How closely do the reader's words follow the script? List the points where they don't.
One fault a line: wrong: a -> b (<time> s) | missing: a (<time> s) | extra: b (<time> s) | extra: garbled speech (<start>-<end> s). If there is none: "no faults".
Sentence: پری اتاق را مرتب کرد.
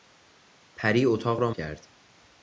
missing: مرتب (1.5 s)